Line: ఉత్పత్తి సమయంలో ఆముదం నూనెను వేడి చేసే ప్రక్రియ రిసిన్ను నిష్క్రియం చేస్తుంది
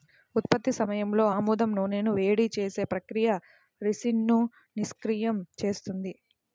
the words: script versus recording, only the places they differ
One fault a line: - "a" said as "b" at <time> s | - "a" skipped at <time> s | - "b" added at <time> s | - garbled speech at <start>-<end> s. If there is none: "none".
none